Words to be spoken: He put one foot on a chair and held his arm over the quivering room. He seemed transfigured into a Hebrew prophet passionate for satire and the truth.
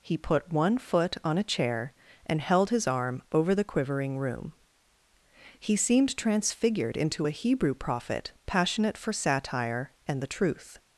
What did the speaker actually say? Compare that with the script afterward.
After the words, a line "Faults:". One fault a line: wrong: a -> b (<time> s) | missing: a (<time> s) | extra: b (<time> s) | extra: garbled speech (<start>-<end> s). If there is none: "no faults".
He put one foot on a chair and held his arm over the quivering room. He seemed transfigured into a Hebrew prophet passionate for satire and the truth.
Faults:
no faults